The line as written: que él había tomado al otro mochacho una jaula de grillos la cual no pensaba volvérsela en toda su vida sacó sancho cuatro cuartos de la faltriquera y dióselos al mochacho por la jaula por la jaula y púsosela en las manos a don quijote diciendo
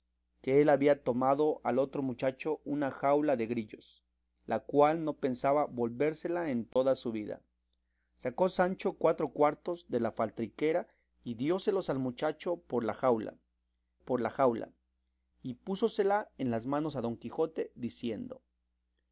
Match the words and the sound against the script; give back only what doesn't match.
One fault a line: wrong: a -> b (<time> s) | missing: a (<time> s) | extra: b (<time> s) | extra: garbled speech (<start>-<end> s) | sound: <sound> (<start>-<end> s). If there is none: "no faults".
sound: dropout (6.7-6.8 s)